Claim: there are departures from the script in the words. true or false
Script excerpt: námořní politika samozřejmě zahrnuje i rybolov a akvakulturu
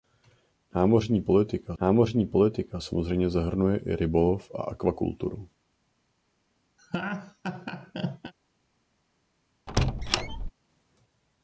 true